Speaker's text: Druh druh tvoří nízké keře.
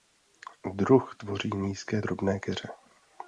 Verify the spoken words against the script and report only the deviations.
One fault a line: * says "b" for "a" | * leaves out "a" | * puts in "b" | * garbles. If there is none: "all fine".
* leaves out "druh"
* puts in "drobné"